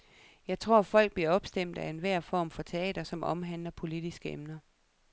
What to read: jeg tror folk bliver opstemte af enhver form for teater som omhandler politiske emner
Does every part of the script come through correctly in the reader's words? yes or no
yes